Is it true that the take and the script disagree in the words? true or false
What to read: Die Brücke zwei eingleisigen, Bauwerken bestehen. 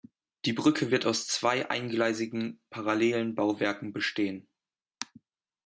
true